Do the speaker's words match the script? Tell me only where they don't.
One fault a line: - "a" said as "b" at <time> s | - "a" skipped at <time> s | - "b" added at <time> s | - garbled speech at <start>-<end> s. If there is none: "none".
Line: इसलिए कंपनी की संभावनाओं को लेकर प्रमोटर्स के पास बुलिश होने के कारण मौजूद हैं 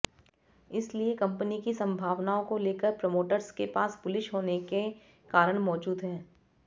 none